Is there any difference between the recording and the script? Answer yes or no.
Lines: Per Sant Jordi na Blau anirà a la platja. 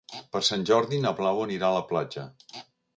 no